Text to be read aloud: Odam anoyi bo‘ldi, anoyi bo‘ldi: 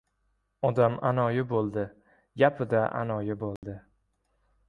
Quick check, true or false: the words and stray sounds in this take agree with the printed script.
false